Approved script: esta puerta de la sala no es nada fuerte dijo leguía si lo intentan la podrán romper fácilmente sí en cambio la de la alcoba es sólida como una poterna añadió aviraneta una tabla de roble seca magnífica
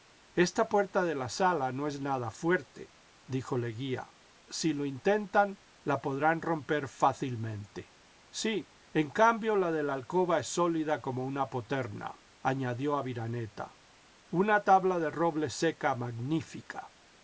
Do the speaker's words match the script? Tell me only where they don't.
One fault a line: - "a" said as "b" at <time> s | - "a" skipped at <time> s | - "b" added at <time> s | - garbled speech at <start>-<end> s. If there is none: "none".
none